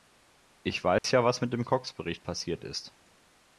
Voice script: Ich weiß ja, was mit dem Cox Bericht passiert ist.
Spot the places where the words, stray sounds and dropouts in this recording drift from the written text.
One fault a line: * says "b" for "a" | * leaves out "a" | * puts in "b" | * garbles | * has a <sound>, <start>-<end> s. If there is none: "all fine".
* has a dropout, 1.0-1.0 s